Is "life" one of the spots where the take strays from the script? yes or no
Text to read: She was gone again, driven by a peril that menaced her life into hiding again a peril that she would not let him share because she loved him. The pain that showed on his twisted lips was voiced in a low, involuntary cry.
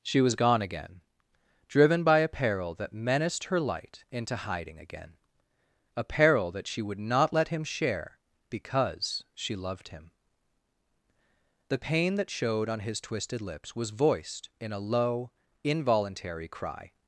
yes